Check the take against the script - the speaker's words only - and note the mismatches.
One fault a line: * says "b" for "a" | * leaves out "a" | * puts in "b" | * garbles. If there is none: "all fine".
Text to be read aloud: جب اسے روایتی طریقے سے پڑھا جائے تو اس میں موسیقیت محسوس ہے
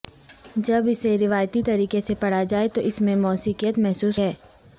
all fine